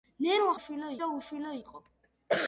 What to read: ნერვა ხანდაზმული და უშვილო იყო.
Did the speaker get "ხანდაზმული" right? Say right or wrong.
wrong